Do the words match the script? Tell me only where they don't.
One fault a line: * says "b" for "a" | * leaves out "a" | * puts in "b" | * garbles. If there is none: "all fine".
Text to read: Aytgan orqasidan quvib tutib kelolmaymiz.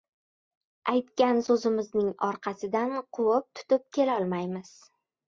* puts in "so‘zimizning"